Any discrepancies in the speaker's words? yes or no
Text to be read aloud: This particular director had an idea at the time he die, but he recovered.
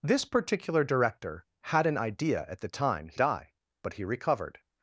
no